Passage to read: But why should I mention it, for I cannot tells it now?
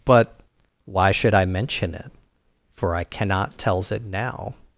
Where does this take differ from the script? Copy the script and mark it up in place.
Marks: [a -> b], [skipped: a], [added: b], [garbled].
But why should I mention it, for I cannot tells it now?